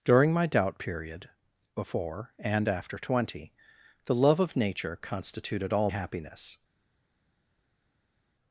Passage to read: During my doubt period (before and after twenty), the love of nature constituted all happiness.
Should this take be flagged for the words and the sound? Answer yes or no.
no